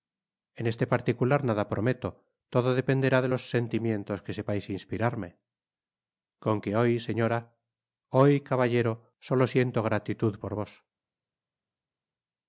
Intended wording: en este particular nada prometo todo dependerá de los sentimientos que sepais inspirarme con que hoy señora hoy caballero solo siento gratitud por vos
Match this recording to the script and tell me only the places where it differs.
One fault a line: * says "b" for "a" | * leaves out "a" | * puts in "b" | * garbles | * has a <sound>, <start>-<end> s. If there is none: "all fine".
all fine